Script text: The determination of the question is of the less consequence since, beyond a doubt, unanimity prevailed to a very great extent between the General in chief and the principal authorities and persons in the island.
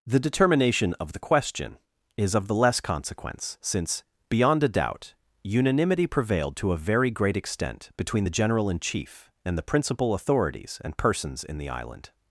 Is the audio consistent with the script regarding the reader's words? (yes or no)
yes